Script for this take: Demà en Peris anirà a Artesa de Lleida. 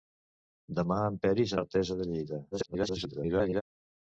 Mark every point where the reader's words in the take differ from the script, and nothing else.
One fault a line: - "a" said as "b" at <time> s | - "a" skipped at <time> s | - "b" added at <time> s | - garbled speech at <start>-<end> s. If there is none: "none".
- "anirà" skipped at 1.6 s
- garbled speech at 2.5-3.6 s